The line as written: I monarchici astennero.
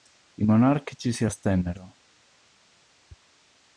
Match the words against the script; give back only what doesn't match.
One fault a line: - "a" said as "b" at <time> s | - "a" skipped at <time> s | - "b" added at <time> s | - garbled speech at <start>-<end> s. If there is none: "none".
- "si" added at 1.1 s